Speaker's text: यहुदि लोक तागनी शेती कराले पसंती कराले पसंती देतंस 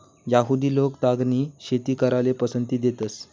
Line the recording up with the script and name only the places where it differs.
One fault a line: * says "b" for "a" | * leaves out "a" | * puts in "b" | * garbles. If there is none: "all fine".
* leaves out "कराले पसंती"